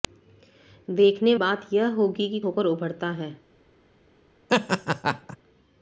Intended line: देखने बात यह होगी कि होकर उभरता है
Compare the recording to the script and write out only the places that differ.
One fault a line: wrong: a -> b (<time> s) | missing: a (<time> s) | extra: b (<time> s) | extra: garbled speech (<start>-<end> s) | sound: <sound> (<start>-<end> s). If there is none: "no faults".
sound: laugh (4.5-5.4 s)